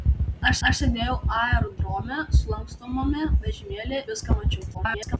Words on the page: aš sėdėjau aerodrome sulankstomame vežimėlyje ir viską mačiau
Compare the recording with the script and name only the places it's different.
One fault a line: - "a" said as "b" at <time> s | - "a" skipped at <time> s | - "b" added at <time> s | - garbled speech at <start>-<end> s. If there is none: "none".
- "aš" added at 0.7 s
- "ir" skipped at 4.0 s
- garbled speech at 4.7-5.2 s